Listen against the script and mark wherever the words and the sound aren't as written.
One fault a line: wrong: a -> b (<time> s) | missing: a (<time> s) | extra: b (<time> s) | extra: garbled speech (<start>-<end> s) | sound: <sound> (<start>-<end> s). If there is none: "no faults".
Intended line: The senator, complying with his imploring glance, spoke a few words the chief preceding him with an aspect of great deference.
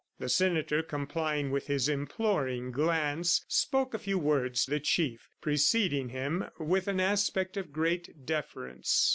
no faults